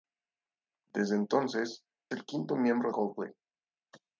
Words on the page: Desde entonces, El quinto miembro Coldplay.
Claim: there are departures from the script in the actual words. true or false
false